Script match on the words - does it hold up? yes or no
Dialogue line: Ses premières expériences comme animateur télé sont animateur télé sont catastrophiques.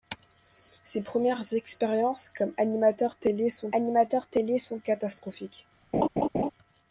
yes